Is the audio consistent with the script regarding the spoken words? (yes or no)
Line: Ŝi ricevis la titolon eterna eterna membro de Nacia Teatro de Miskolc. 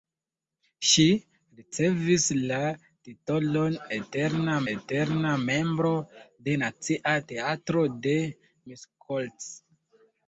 yes